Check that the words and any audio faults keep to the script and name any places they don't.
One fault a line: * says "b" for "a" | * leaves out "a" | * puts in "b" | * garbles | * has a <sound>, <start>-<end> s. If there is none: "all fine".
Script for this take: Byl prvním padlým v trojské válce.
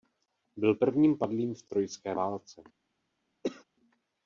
* has a cough, 3.4-3.6 s